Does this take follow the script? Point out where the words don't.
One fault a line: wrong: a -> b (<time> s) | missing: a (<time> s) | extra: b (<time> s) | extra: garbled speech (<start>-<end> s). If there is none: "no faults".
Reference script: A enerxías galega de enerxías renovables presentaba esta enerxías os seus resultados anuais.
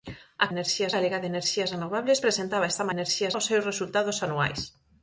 no faults